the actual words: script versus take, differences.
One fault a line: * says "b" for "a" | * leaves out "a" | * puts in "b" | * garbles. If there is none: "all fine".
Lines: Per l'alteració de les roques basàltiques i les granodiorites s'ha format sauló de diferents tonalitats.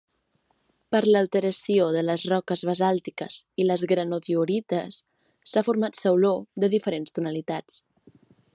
all fine